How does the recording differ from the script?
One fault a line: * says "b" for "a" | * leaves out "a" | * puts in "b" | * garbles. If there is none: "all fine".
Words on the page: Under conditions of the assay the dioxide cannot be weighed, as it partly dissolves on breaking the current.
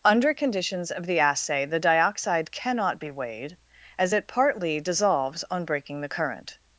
all fine